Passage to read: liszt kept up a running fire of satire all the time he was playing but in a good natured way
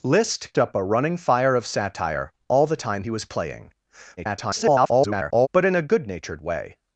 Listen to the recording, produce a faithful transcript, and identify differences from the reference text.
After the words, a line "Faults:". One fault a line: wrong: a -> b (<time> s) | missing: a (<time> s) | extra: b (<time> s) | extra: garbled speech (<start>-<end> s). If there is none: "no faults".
liszt up a running fire of satire all the time he was playing [garbled] but in a good natured way
Faults:
missing: kept (0.6 s)
extra: garbled speech (4.2-5.5 s)